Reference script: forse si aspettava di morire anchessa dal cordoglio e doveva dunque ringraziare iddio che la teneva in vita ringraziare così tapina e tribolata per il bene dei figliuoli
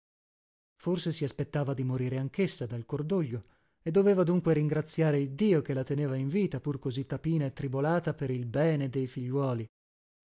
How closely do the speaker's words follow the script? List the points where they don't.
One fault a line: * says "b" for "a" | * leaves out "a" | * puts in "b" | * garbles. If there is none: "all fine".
* says "pur" for "ringraziare"